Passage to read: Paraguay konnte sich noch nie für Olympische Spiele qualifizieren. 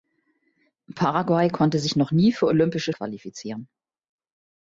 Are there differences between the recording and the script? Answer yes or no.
yes